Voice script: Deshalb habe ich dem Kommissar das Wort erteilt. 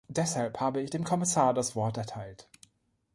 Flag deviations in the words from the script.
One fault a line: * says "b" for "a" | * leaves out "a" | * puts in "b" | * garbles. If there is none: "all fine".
all fine